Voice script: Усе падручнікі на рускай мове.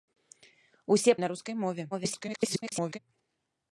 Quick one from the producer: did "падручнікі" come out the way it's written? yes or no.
no